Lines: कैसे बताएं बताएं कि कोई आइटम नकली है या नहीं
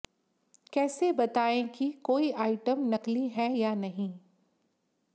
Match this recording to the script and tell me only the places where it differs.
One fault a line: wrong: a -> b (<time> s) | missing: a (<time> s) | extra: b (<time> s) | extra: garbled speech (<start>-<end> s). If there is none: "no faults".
missing: बताएं (1.7 s)